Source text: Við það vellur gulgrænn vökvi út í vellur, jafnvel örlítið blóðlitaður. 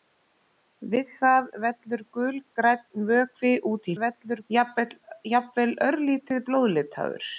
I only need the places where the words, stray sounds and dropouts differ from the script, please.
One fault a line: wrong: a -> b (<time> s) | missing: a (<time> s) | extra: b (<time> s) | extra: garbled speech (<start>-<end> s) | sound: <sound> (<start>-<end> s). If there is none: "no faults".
no faults